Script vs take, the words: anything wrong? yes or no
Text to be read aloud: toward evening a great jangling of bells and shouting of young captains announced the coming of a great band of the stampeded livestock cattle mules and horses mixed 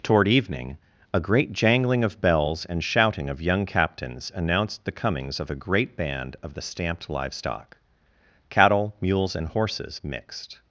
yes